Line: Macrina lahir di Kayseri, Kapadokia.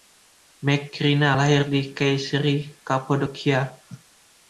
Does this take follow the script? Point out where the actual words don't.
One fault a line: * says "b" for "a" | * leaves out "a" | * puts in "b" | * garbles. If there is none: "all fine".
all fine